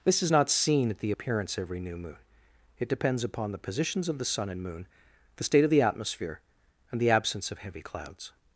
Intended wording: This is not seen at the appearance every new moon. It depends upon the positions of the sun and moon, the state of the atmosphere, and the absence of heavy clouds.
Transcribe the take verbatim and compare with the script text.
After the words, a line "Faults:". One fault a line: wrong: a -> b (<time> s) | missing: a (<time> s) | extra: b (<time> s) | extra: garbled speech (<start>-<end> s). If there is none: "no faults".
This is not seen at the appearance every new moon. It depends upon the positions of the sun and moon, the state of the atmosphere, and the absence of heavy clouds.
Faults:
no faults